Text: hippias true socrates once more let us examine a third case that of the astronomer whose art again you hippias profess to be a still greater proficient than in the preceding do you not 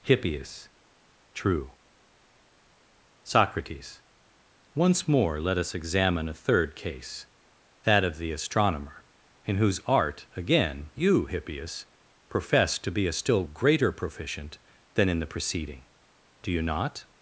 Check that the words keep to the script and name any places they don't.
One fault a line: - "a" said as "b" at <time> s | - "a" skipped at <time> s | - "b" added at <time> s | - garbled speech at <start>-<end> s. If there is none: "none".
- "in" added at 9.4 s